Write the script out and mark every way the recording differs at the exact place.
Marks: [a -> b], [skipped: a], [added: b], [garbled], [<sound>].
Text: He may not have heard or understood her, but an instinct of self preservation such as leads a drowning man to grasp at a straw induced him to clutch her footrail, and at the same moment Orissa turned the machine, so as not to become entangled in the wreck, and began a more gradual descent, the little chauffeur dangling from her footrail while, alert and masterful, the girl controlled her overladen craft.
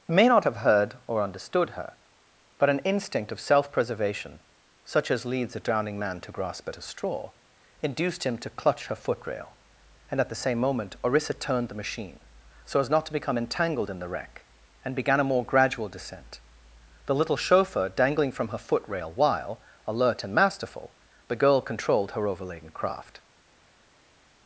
[skipped: He] may not have heard or understood her, but an instinct of self preservation such as leads a drowning man to grasp at a straw induced him to clutch her footrail, and at the same moment Orissa turned the machine, so as not to become entangled in the wreck, and began a more gradual descent, the little chauffeur dangling from her footrail while, alert and masterful, the girl controlled her overladen craft.